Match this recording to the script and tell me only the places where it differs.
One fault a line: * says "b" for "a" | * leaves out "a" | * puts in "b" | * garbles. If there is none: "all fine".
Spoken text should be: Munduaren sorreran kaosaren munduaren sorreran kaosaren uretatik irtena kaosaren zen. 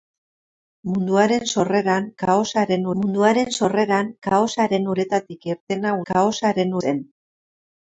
all fine